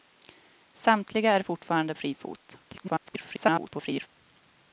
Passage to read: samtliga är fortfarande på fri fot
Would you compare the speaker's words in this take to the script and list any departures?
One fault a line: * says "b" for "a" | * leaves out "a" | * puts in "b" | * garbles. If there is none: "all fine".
* leaves out "på"
* garbles